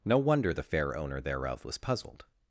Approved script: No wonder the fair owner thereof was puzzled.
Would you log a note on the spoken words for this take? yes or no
no